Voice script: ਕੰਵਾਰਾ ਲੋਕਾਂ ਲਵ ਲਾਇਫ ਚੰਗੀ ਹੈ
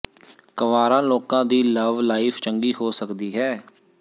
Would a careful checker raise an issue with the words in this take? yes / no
yes